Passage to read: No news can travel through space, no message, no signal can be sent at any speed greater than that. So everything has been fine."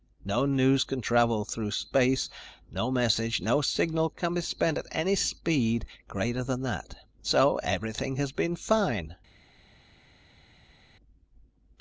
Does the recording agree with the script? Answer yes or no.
yes